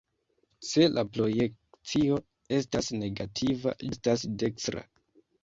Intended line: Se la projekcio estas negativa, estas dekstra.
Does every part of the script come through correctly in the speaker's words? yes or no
yes